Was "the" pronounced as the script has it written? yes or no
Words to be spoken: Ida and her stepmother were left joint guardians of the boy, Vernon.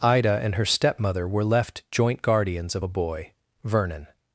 no